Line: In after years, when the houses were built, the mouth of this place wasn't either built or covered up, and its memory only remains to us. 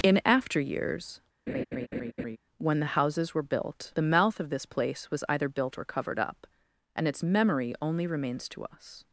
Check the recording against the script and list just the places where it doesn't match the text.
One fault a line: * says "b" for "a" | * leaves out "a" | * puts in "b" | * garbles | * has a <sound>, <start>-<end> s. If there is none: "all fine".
* has a laugh, 1.5-2.4 s
* says "was" for "wasn't"